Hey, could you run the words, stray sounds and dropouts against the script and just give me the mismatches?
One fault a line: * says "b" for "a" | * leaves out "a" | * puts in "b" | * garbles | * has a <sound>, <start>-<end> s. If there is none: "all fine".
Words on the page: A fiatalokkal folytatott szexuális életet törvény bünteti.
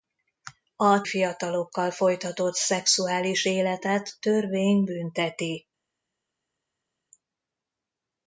all fine